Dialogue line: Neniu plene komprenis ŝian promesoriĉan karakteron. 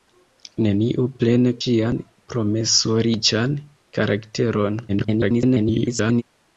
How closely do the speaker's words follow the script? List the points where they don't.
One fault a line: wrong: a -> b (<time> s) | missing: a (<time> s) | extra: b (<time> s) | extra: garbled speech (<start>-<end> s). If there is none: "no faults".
missing: komprenis (1.5 s)
extra: garbled speech (4.9-6.2 s)